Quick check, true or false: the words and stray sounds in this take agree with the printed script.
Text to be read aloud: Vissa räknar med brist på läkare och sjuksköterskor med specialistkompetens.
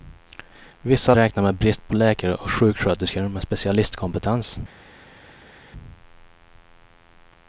true